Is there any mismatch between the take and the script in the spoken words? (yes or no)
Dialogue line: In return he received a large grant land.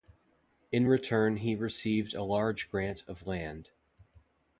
yes